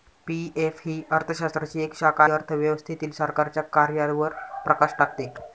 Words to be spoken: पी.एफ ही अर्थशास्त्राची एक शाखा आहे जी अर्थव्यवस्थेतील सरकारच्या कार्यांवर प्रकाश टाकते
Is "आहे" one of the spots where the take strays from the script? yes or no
yes